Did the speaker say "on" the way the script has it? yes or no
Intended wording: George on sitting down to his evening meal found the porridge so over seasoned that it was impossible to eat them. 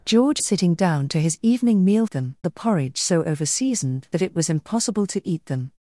no